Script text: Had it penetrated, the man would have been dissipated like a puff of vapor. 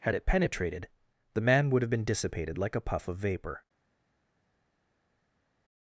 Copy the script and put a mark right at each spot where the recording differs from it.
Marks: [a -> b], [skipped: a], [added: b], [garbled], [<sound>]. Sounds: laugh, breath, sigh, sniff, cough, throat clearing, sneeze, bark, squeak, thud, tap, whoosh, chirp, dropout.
Had it penetrated, the man would have been dissipated like a puff of vapor.